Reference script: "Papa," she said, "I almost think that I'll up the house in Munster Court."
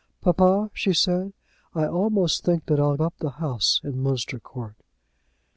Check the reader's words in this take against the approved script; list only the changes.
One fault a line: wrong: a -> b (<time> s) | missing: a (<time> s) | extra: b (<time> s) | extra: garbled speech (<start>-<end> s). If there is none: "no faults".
no faults